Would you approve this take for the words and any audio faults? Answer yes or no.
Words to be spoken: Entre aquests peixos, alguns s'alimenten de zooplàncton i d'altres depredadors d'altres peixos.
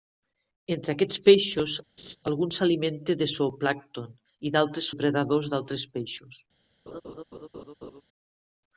no